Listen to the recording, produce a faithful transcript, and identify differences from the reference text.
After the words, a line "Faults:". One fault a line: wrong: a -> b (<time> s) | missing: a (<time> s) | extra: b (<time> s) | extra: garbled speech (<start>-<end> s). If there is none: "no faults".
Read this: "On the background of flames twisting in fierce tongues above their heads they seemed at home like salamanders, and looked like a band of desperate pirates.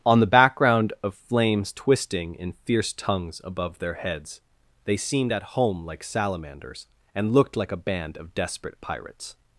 "On the background of flames twisting in fierce tongues above their heads they seemed at home like salamanders, and looked like a band of desperate pirates.
Faults:
no faults